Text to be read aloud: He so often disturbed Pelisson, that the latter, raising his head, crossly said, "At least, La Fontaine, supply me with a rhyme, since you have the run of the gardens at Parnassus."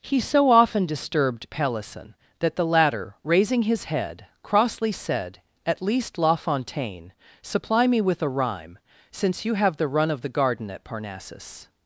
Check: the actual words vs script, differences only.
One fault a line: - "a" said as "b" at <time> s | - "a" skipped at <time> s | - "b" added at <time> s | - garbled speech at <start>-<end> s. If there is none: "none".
- "gardens" said as "garden" at 10.3 s